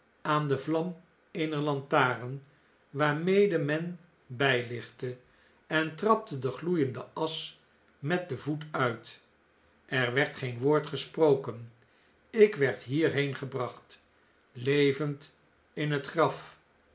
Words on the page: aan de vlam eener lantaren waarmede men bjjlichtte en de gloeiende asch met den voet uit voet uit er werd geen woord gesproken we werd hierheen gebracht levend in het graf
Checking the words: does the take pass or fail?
fail